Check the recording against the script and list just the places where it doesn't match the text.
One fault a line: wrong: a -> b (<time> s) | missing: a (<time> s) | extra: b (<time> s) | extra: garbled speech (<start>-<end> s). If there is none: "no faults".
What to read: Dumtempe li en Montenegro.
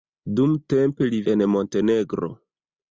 no faults